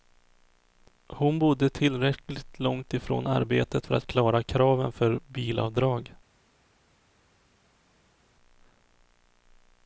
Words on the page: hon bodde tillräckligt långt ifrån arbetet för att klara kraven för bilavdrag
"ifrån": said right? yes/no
yes